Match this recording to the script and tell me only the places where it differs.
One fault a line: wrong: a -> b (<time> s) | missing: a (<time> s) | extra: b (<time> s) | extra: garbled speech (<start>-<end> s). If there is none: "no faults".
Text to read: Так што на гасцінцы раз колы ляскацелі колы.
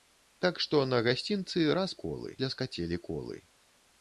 no faults